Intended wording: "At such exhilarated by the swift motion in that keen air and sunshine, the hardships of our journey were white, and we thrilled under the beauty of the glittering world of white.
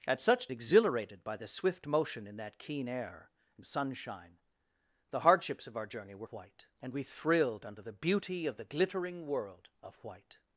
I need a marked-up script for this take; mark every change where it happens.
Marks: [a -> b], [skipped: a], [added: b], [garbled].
"At such exhilarated by the swift motion in that keen air and sunshine, the hardships of our journey were white, and we thrilled under the beauty of the glittering world of white.